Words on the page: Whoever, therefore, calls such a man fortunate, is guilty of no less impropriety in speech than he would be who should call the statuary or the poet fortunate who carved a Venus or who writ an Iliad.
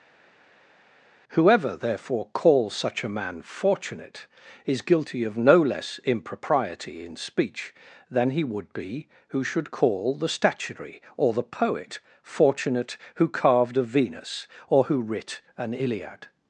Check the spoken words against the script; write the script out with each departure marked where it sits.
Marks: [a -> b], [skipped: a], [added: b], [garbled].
Whoever, therefore, calls such a man fortunate, is guilty of no less impropriety in speech than he would be who should call the statuary or the poet fortunate who carved a Venus or who writ an Iliad.